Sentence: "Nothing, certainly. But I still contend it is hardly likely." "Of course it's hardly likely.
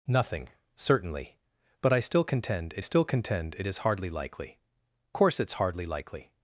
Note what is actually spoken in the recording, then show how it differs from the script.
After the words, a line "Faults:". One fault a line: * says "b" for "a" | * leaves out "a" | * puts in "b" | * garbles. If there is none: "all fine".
"Nothing, certainly. But I still contend it still contend it is hardly likely." "Course it's hardly likely.
Faults:
* puts in "still contend it"
* leaves out "Of"